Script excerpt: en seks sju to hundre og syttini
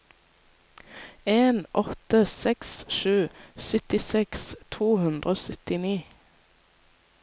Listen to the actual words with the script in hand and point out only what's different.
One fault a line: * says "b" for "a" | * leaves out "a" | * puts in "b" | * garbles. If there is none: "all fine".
* puts in "åtte"
* puts in "syttiseks"